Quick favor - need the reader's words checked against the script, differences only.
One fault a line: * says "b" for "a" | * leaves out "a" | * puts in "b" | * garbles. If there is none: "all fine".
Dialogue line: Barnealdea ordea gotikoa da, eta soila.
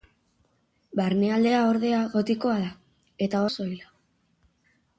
all fine